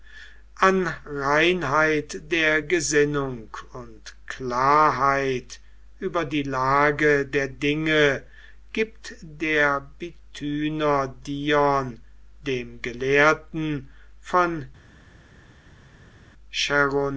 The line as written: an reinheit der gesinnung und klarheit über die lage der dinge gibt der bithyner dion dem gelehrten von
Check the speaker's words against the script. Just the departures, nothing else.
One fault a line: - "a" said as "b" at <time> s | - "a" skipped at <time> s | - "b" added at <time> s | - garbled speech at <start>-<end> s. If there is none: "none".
none